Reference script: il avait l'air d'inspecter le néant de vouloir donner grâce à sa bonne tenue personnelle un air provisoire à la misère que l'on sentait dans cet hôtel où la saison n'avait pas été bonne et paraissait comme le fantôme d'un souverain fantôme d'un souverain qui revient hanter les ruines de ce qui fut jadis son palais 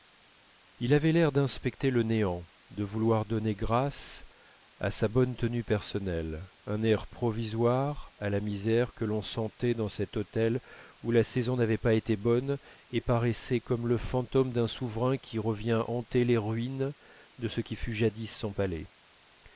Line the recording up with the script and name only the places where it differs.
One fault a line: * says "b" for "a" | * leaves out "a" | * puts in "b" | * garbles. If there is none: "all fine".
* leaves out "fantôme d'un souverain"